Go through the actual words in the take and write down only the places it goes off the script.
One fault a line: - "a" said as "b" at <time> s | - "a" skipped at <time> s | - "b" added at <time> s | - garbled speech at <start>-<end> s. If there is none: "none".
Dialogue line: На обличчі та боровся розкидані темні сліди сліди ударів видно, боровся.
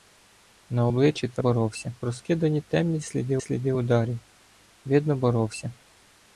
none